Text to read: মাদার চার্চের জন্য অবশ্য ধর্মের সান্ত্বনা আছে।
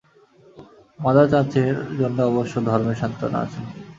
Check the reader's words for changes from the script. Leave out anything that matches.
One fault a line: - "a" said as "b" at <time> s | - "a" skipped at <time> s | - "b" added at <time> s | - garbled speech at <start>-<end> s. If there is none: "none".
none